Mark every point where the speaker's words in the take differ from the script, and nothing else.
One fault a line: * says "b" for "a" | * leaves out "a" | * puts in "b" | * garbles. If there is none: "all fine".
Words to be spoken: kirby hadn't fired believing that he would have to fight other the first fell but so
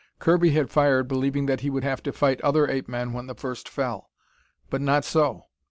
* says "had" for "hadn't"
* puts in "ape men when"
* puts in "not"